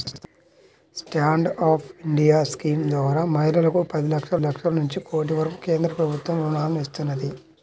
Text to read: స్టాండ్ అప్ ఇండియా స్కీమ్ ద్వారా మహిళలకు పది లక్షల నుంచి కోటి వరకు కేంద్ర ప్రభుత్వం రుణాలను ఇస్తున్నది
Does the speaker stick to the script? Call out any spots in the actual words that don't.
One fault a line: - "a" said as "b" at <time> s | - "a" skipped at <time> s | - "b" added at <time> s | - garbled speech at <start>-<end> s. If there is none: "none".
- "లక్షల" added at 4.4 s